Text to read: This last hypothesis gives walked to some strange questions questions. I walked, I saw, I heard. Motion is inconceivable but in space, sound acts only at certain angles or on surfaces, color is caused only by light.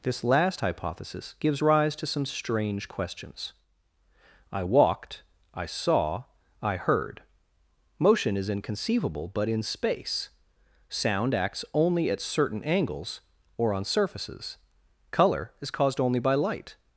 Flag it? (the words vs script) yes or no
yes